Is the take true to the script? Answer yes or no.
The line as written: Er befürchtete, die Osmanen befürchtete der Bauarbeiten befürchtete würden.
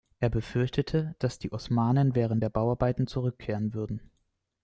no